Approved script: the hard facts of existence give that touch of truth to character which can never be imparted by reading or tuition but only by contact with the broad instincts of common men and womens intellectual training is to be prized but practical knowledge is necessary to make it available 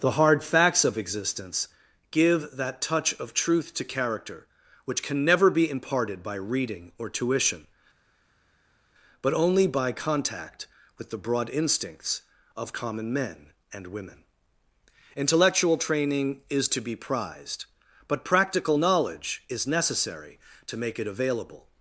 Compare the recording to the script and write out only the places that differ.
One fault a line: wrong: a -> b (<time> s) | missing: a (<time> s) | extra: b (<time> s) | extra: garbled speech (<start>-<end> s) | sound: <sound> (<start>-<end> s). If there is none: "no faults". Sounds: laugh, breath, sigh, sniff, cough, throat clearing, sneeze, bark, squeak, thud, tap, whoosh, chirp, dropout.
wrong: womens -> women (13.9 s)